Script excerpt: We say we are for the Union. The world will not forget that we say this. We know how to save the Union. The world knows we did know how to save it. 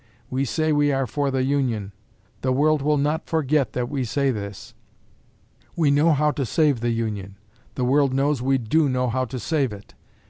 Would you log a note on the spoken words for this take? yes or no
yes